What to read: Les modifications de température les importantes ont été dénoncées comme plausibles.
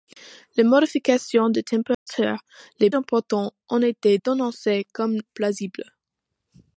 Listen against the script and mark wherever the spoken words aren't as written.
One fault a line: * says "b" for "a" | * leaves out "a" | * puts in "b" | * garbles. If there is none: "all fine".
all fine